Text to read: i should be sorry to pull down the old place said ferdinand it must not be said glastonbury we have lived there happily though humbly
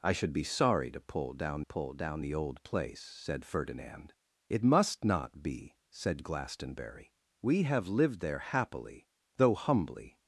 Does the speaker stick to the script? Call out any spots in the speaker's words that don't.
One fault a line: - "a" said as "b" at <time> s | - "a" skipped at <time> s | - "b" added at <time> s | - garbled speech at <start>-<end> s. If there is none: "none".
- "pull down" added at 1.6 s